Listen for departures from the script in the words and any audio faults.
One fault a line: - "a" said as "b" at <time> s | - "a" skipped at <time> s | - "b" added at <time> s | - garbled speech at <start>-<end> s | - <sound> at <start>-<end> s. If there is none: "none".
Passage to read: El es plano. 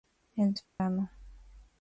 - dropout at 0.7-0.8 s